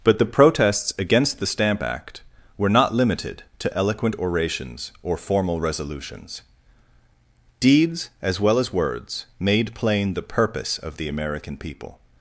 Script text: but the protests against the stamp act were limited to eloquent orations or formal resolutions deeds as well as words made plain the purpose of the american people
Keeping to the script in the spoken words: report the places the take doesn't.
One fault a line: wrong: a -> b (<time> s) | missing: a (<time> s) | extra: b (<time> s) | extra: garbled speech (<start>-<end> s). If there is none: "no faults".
extra: not (2.7 s)